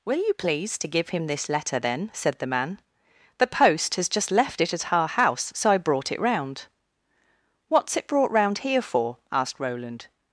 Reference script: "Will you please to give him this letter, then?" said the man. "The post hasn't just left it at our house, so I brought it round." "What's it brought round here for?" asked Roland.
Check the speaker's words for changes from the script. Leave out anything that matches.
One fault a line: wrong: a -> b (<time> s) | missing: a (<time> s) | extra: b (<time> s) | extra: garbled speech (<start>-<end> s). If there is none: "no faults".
wrong: hasn't -> has (4.0 s)